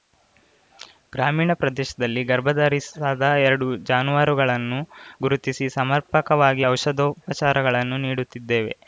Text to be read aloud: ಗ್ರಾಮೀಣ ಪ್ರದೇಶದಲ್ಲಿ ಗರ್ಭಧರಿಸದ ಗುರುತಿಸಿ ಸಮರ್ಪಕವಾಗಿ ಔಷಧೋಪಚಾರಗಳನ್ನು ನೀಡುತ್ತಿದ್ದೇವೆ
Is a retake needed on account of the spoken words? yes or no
yes